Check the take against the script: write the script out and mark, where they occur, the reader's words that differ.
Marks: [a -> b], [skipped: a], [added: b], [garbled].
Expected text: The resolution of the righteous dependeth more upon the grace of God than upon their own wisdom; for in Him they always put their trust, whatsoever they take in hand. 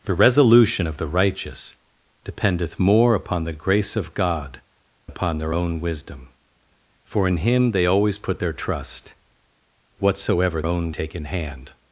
The resolution of the righteous dependeth more upon the grace of God [skipped: than] upon their own wisdom; for in Him they always put their trust, whatsoever [they -> own] take in hand.